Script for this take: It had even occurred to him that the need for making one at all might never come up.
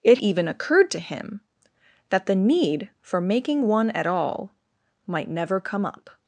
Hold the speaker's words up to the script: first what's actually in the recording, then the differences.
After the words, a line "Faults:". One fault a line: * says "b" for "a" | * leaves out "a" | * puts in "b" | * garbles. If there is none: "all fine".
It even occurred to him that the need for making one at all might never come up.
Faults:
* leaves out "had"